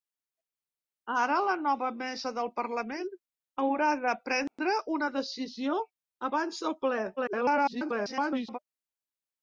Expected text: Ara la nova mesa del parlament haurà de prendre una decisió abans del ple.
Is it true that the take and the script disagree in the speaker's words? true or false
true